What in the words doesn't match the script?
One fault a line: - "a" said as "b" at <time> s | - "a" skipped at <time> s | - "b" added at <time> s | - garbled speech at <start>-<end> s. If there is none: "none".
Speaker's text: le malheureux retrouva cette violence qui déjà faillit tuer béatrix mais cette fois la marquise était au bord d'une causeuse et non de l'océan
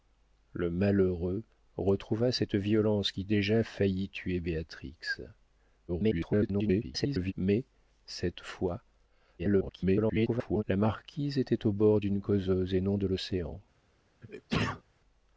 - garbled speech at 5.9-7.3 s
- garbled speech at 9.4-10.6 s